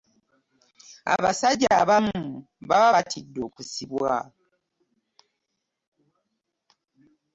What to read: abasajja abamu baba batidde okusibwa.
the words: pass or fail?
pass